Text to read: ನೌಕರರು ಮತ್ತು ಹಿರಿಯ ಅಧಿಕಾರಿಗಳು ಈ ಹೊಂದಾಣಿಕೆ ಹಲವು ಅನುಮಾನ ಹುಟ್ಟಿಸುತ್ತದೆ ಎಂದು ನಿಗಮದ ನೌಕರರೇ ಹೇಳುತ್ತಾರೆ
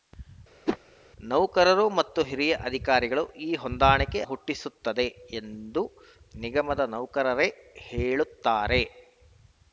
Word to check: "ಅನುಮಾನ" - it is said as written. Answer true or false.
false